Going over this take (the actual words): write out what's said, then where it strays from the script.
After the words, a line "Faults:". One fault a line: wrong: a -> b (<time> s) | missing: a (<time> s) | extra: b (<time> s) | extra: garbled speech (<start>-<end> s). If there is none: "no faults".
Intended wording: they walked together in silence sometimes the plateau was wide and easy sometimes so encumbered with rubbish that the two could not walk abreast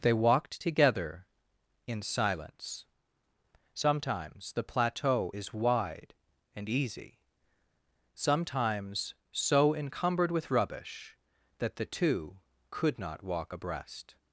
they walked together in silence sometimes the plateau is wide and easy sometimes so encumbered with rubbish that the two could not walk abreast
Faults:
wrong: was -> is (5.3 s)